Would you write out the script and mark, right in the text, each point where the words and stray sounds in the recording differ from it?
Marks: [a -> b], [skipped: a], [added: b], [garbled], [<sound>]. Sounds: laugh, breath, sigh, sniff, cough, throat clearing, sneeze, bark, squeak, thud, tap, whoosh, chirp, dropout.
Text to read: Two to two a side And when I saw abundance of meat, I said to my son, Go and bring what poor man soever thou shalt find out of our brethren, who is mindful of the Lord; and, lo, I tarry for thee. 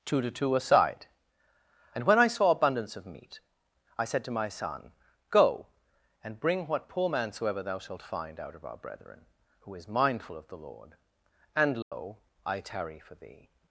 Two to two a side And when I saw abundance of meat, I said to my son, Go and bring what poor man soever thou shalt find out of our brethren, who is mindful of the Lord; and, lo, [dropout] I tarry for thee.